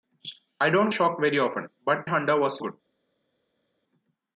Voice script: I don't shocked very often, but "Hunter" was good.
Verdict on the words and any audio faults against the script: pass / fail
pass